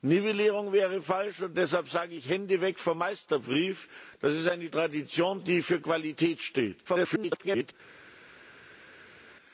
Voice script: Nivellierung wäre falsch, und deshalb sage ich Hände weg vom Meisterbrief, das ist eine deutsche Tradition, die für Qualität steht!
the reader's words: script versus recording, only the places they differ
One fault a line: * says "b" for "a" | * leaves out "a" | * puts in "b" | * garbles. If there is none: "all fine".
* leaves out "deutsche"
* garbles